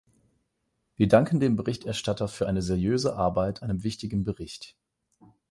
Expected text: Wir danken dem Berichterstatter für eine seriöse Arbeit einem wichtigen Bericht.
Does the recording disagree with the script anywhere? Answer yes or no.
no